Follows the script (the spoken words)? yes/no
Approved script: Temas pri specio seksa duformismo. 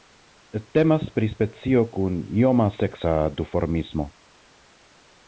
no